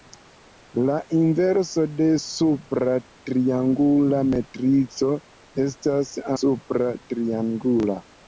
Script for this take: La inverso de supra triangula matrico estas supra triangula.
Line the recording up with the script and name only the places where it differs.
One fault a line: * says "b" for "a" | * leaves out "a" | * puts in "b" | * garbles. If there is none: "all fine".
all fine